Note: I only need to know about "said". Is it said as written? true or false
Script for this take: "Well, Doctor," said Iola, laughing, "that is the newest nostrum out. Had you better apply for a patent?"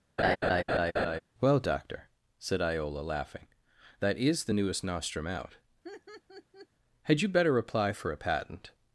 true